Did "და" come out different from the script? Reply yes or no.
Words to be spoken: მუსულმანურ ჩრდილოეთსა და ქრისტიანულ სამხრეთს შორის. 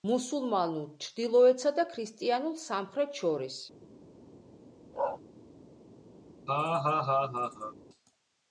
no